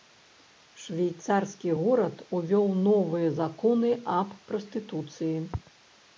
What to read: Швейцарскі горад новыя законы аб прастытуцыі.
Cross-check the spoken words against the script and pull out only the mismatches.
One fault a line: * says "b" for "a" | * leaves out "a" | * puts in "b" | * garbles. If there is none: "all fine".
* puts in "увёў"